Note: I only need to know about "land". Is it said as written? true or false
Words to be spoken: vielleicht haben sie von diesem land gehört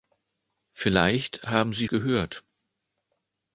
false